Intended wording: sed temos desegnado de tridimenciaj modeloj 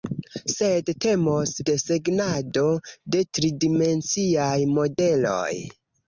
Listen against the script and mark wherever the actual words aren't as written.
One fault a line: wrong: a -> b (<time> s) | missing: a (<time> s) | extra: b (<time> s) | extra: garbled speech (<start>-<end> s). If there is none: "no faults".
no faults